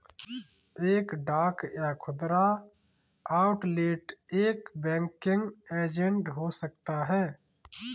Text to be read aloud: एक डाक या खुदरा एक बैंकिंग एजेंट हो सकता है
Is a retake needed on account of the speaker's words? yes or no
yes